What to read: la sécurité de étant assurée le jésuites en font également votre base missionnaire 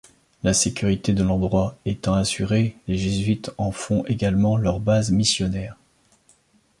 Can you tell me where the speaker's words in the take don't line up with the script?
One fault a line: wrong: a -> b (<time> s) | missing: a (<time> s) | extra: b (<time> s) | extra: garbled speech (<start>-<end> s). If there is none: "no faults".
extra: l'endroit (1.2 s)
wrong: le -> les (2.9 s)
wrong: votre -> leur (4.6 s)